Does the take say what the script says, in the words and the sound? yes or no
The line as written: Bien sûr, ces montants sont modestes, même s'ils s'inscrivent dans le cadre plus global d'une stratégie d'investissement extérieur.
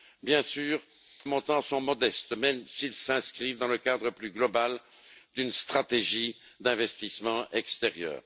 no